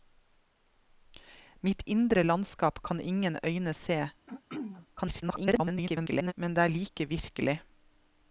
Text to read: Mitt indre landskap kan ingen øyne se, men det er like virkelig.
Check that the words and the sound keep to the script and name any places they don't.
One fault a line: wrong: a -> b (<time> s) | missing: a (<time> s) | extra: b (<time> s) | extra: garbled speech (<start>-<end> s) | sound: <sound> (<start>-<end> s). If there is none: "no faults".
sound: throat clearing (4.3-4.9 s)
extra: garbled speech (5.0-6.3 s)